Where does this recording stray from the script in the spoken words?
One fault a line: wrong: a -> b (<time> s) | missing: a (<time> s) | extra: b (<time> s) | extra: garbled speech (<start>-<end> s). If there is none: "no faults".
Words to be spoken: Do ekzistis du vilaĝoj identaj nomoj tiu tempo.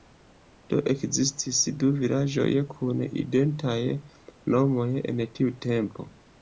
extra: kun (2.7 s)
extra: en (5.1 s)